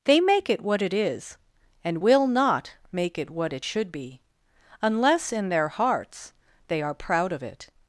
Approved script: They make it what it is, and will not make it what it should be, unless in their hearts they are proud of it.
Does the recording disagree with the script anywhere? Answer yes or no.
no